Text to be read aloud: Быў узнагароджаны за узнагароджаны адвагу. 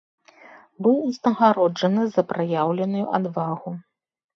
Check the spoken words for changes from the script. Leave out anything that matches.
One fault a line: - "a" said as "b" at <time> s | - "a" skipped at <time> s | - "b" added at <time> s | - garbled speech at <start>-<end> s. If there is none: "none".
- "узнагароджаны" said as "праяўленую" at 2.4 s